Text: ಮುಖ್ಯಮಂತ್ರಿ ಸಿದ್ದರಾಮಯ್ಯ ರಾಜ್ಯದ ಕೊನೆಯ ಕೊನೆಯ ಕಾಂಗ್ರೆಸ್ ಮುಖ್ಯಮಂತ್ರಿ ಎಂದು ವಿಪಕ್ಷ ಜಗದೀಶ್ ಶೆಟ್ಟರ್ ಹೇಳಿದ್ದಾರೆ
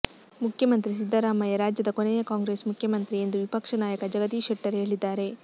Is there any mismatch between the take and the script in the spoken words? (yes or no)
yes